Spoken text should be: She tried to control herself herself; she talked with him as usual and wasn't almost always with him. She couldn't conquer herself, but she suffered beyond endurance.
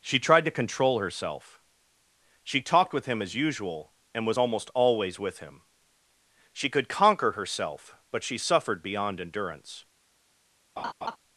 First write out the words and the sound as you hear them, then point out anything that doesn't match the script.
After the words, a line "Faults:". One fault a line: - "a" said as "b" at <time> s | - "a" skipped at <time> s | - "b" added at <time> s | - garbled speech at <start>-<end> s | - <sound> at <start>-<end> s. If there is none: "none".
She tried to control herself; she talked with him as usual and was almost always with him. She could conquer herself, but she suffered beyond endurance.
Faults:
- "herself" skipped at 1.6 s
- "wasn't" said as "was" at 4.2 s
- "couldn't" said as "could" at 6.7 s
- laugh at 10.8-11.2 s